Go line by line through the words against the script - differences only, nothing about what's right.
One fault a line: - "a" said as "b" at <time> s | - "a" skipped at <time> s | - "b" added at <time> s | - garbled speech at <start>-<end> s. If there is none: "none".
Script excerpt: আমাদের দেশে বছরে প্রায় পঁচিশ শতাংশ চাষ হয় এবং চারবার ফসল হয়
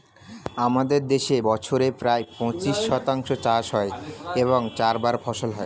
none